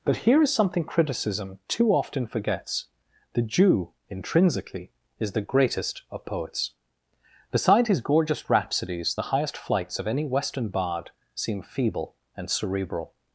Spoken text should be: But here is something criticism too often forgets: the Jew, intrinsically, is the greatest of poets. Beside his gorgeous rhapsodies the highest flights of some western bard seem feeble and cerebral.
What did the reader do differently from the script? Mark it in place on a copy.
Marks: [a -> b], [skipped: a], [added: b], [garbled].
But here is something criticism too often forgets: the Jew, intrinsically, is the greatest of poets. Beside his gorgeous rhapsodies the highest flights of [some -> any] western bard seem feeble and cerebral.